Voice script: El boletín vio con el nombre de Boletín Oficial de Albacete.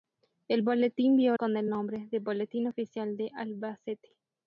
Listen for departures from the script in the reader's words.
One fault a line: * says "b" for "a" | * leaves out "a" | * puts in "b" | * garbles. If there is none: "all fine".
all fine